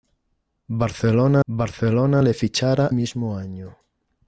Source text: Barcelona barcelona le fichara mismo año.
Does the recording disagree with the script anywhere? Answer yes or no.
no